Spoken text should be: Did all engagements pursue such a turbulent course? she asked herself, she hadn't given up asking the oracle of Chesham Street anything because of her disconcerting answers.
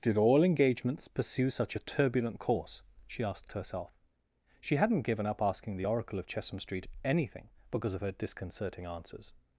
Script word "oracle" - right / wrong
right